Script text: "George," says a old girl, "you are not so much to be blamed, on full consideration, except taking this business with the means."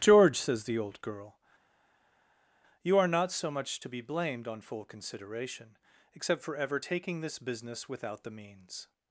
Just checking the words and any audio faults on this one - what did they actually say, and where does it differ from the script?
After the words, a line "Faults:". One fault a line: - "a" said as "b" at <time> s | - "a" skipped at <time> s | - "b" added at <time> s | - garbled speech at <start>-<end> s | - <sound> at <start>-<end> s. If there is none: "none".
"George," says the old girl, "you are not so much to be blamed, on full consideration, except for ever taking this business without the means."
Faults:
- "a" said as "the" at 0.6 s
- "for ever" added at 6.4 s
- "with" said as "without" at 7.9 s